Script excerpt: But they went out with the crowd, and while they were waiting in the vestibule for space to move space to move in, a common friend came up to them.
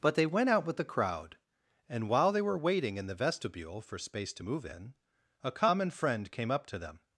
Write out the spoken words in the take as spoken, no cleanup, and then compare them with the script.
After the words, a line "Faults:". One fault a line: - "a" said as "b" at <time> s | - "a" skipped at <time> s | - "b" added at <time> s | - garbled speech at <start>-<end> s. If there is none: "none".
But they went out with the crowd, and while they were waiting in the vestibule for space to move in, a common friend came up to them.
Faults:
- "space to move" skipped at 4.6 s